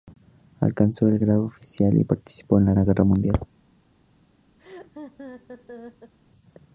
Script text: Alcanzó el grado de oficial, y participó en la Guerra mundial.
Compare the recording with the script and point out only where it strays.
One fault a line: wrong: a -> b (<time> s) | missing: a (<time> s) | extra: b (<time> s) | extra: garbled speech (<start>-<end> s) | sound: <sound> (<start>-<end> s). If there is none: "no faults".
extra: la (2.7 s)
sound: laugh (4.6-6.1 s)